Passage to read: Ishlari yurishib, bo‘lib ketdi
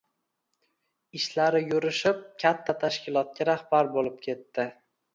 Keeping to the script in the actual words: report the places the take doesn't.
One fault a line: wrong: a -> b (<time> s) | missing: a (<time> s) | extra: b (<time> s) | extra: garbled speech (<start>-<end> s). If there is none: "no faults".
extra: katta tashkilotga rahbar (2.5 s)